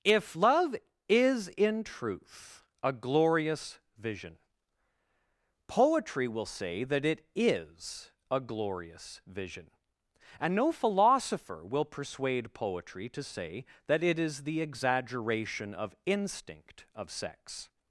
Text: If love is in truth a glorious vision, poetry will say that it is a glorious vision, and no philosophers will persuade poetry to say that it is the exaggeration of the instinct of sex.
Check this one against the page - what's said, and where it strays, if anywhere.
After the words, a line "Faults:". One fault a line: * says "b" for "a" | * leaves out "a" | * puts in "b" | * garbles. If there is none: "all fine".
If love is in truth a glorious vision, poetry will say that it is a glorious vision, and no philosopher will persuade poetry to say that it is the exaggeration of instinct of sex.
Faults:
* says "philosopher" for "philosophers"
* leaves out "the"